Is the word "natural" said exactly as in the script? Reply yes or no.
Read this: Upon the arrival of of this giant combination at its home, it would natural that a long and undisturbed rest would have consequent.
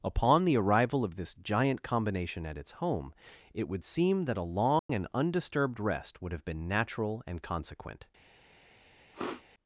no